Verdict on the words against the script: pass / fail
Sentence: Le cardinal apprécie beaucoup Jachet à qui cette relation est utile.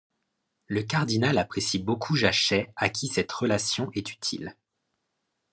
pass